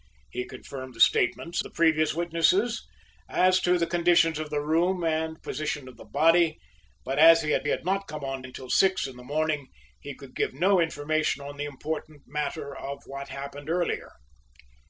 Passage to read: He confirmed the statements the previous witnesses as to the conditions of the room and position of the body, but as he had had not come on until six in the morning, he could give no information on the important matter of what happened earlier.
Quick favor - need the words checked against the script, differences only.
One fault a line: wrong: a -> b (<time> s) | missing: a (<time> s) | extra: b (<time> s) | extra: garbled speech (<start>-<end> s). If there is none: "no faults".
no faults